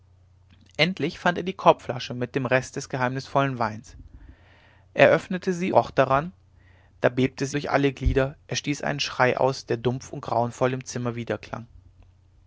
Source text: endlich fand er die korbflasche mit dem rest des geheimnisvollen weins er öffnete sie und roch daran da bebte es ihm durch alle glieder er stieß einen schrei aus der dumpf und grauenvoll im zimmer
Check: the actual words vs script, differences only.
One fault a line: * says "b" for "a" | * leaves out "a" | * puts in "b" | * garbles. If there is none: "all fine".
* leaves out "und"
* leaves out "ihm"